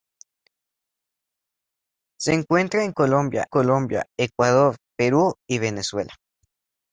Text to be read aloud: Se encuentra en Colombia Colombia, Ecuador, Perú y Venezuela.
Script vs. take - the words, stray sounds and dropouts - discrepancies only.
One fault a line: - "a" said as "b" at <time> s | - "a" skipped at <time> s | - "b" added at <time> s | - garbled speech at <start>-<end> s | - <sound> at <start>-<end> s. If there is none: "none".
none